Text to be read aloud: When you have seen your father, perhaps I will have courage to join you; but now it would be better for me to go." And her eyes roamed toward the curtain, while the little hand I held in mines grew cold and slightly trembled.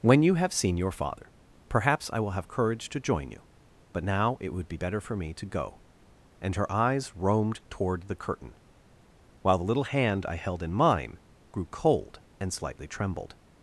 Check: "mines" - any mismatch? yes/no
yes